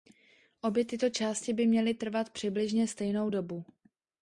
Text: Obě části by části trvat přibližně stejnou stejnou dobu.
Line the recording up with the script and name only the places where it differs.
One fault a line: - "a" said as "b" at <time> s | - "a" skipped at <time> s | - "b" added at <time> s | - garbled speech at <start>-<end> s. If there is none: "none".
- "tyto" added at 0.8 s
- "části" said as "měly" at 1.7 s
- "stejnou" skipped at 3.3 s